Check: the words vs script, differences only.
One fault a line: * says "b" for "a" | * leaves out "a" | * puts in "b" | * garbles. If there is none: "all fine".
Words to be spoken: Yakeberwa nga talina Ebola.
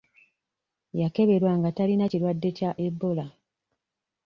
* puts in "kirwadde kya"